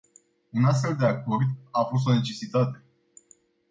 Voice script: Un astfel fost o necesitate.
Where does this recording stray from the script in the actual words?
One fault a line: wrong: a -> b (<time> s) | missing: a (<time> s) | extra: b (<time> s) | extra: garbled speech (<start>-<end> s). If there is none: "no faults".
extra: de acord a (0.9 s)